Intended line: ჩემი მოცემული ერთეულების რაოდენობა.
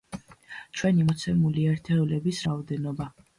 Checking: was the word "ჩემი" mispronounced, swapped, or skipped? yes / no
yes